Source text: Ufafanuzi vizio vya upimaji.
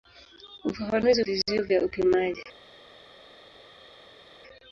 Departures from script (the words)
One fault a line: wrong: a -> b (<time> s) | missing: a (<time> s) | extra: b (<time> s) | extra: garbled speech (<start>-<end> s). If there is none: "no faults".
no faults